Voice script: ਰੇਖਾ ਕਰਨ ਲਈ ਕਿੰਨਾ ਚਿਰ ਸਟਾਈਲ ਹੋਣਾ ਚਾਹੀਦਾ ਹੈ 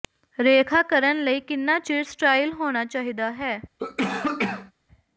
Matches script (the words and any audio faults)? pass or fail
fail